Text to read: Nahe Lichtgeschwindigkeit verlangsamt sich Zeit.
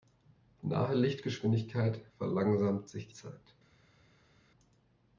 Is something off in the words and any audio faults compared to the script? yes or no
no